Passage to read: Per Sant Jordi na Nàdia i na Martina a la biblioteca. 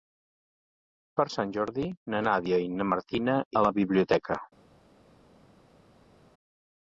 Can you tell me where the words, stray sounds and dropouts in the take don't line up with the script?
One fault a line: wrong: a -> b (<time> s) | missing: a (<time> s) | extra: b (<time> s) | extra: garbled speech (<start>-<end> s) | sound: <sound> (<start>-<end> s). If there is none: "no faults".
no faults